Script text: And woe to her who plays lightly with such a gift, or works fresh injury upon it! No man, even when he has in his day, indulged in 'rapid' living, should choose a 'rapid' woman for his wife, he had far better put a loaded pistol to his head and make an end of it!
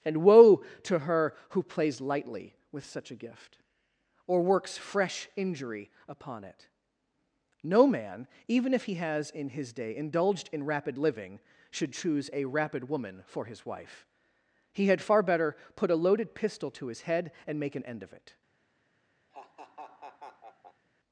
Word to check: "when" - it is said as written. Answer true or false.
false